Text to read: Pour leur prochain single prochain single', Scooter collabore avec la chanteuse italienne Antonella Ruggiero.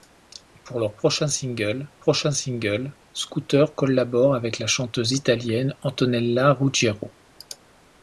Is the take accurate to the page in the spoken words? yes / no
yes